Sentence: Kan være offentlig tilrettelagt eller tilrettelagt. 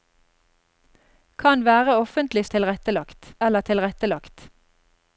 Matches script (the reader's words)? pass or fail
pass